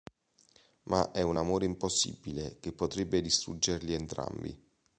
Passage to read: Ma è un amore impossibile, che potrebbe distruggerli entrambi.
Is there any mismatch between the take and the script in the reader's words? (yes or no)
no